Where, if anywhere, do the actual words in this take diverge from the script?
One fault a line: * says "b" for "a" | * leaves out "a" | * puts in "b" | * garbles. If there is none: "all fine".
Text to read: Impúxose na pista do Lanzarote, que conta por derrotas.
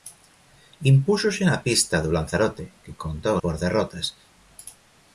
all fine